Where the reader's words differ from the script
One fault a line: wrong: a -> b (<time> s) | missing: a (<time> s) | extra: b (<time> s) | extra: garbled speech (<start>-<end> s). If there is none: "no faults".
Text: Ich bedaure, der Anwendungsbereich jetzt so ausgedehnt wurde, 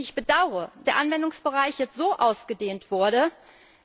no faults